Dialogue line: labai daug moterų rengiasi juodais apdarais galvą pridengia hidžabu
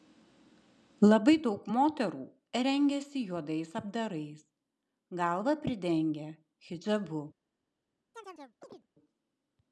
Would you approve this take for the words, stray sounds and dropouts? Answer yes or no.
no